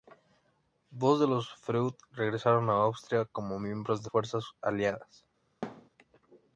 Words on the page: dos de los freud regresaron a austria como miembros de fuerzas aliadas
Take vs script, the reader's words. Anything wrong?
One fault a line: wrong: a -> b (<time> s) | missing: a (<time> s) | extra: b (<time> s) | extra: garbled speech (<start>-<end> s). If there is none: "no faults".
no faults